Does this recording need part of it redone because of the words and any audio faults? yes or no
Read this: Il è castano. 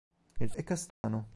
yes